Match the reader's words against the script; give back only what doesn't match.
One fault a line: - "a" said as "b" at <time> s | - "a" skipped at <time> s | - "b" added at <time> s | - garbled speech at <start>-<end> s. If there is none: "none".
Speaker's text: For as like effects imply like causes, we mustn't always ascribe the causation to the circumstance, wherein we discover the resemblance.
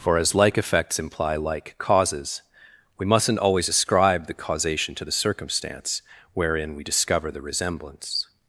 none